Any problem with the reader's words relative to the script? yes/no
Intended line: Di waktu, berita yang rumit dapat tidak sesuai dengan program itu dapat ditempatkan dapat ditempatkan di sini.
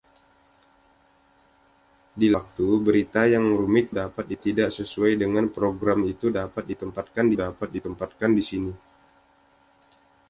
no